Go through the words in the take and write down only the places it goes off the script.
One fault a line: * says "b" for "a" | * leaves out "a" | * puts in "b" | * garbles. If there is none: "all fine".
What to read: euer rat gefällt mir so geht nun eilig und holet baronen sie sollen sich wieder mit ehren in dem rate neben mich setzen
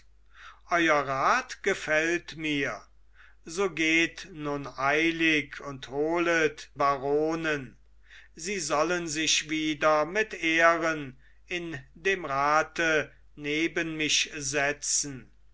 all fine